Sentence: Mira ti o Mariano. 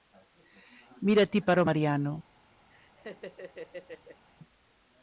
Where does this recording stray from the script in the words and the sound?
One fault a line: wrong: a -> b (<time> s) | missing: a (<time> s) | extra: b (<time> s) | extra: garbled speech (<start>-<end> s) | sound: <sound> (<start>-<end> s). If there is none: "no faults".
extra: para (1.5 s)
sound: laugh (2.7-4.2 s)